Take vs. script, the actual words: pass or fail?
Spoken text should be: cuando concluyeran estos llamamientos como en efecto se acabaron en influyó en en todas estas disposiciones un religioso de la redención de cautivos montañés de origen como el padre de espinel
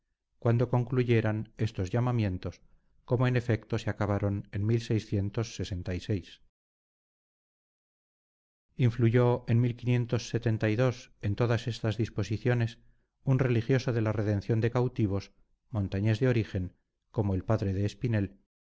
pass